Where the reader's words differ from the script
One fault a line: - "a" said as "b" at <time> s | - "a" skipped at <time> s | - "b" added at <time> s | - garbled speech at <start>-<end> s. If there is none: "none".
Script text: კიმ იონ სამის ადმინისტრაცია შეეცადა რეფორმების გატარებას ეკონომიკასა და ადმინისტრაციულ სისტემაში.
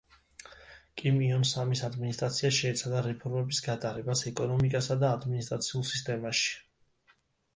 none